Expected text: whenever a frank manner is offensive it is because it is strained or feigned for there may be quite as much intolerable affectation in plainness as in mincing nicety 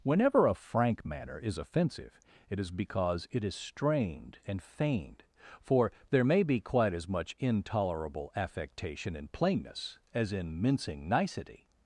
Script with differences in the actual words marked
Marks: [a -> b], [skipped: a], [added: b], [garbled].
whenever a frank manner is offensive it is because it is strained [or -> and] feigned for there may be quite as much intolerable affectation in plainness as in mincing nicety